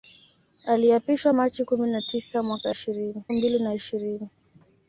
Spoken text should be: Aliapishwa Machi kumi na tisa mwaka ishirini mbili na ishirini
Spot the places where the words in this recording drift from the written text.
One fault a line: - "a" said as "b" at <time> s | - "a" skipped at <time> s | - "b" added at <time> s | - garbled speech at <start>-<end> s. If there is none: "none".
none